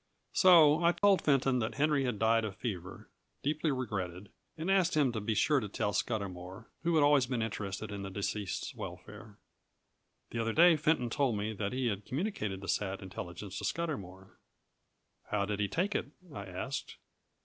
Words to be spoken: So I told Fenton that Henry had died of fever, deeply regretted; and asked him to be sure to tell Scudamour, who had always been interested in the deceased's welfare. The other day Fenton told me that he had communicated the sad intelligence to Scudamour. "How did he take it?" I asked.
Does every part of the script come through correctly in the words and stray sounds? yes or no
no